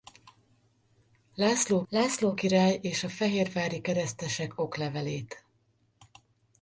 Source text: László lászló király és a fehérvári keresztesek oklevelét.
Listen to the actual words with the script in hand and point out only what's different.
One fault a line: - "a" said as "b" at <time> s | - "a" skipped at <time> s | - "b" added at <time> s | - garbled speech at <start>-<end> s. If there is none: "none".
none